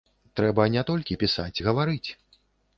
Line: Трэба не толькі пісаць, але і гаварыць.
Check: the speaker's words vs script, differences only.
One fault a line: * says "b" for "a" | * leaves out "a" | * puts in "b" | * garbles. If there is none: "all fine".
* leaves out "але"